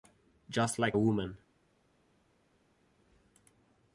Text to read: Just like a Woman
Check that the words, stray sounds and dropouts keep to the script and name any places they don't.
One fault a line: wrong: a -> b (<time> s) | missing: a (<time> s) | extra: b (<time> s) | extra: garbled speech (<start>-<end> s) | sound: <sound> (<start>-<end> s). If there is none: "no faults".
missing: a (1.0 s)